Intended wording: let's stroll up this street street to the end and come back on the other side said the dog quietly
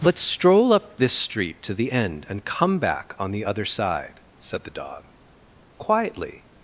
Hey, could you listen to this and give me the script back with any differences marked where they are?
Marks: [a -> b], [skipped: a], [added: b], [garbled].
let's stroll up this street [skipped: street] to the end and come back on the other side said the dog quietly